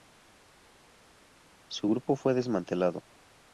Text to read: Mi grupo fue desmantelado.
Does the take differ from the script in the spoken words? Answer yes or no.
yes